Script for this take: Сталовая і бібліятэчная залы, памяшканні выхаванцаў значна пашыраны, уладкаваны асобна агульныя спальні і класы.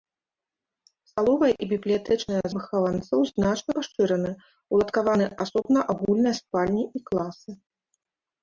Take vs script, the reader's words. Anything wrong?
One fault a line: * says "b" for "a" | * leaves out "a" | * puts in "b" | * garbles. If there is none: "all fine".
* leaves out "залы памяшканні"